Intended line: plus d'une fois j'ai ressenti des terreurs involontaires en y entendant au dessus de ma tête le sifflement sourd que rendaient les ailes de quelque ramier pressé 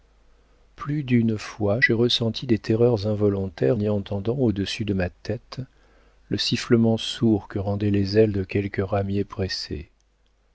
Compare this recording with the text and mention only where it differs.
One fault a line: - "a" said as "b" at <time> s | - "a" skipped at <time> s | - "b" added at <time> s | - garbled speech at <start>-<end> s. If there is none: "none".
- "en" skipped at 3.8 s